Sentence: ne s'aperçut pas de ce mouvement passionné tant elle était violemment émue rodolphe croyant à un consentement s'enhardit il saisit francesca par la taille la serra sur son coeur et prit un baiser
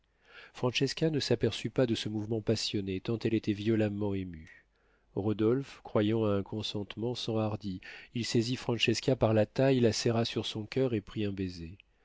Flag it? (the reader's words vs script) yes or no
no